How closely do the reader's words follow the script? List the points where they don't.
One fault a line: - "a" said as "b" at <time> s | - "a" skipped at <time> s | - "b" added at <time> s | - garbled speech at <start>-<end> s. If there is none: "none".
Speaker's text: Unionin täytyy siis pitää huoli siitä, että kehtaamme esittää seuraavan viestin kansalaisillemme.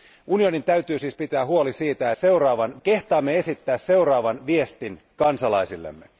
- "että" said as "seuraavan" at 2.1 s